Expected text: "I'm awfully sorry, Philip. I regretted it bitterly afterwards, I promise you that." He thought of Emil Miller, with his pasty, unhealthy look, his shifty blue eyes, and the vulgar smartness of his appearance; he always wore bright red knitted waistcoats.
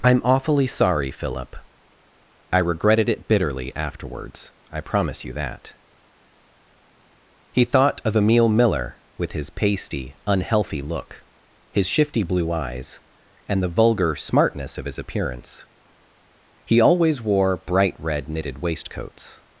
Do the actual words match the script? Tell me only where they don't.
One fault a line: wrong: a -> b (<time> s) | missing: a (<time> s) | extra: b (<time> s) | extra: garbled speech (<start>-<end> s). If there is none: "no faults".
no faults